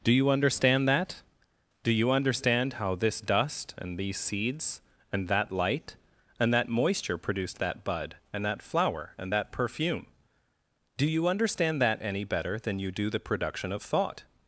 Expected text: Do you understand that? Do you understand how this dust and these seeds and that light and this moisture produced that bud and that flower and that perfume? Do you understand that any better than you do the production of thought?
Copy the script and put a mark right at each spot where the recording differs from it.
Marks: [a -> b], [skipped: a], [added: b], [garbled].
Do you understand that? Do you understand how this dust and these seeds and that light and [this -> that] moisture produced that bud and that flower and that perfume? Do you understand that any better than you do the production of thought?